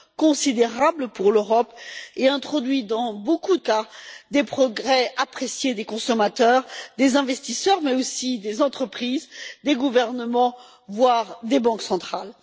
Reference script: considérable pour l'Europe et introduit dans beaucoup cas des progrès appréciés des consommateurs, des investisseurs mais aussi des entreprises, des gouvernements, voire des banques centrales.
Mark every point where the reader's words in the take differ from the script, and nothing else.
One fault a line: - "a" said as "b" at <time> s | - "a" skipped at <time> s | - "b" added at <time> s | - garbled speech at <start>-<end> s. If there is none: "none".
none